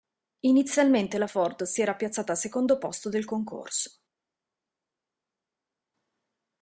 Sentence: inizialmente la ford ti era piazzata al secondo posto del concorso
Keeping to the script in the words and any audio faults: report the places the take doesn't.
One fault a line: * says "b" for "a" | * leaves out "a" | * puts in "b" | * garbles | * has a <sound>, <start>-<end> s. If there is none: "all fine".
* says "si" for "ti"